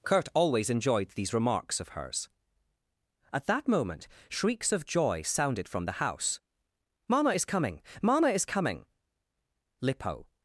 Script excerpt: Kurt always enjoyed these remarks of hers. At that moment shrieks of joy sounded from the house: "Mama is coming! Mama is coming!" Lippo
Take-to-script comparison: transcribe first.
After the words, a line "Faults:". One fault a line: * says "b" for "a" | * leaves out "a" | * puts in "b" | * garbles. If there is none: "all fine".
Kurt always enjoyed these remarks of hers. At that moment shrieks of joy sounded from the house: "Mama is coming! Mama is coming!" Lippo
Faults:
all fine